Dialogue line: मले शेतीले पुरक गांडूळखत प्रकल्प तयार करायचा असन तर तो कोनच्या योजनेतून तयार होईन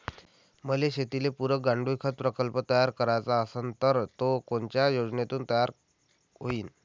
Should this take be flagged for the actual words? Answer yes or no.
no